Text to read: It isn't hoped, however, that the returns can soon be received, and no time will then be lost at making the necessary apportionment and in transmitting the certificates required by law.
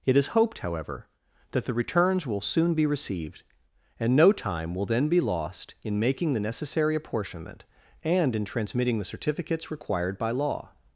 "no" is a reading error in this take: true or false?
false